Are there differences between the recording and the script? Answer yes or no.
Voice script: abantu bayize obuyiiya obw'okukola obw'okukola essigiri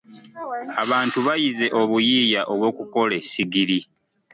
yes